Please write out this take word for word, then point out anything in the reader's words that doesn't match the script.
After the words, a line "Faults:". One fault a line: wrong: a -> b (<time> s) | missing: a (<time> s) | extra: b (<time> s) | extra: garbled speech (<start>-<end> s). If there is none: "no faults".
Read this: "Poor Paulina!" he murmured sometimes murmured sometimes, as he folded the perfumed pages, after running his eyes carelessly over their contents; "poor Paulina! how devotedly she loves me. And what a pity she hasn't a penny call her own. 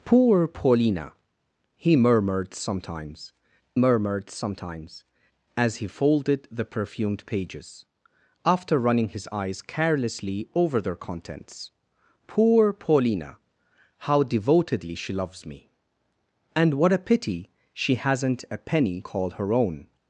"Poor Paulina!" he murmured sometimes murmured sometimes, as he folded the perfumed pages, after running his eyes carelessly over their contents; "poor Paulina! how devotedly she loves me. And what a pity she hasn't a penny call her own.
Faults:
no faults